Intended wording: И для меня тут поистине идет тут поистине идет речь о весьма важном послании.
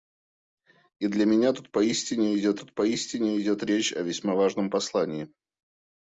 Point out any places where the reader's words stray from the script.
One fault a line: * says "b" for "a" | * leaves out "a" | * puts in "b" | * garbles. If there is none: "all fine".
all fine